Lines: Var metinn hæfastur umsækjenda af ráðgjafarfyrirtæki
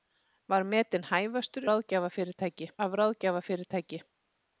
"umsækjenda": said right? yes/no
no